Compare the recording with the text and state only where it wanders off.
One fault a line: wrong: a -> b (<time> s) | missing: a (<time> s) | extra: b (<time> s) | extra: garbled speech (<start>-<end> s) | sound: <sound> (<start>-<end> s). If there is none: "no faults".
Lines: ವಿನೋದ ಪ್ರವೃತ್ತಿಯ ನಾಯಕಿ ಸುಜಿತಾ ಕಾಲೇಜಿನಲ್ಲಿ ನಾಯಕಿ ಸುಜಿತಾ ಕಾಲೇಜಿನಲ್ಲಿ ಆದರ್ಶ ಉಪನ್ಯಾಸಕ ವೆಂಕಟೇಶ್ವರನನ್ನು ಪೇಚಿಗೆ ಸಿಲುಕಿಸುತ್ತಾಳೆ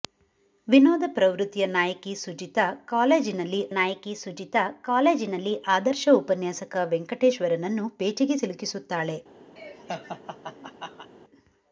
sound: laugh (9.6-11.1 s)